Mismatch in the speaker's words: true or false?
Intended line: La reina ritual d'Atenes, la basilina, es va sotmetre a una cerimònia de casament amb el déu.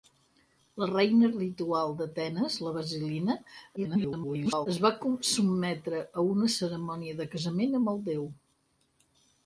true